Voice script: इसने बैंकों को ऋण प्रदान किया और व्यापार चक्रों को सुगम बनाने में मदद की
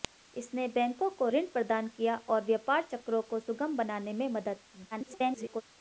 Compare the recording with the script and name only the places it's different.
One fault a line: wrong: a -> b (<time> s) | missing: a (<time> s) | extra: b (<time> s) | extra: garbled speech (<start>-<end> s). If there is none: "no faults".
extra: garbled speech (4.9-5.6 s)